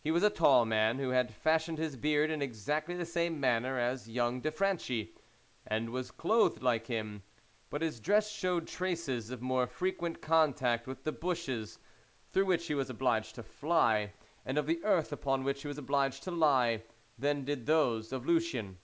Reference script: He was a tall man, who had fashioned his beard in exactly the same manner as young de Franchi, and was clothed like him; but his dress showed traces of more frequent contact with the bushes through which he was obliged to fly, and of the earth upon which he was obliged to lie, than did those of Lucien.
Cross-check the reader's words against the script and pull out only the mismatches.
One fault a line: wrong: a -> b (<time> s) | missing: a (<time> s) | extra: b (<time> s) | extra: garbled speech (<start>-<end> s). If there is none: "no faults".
no faults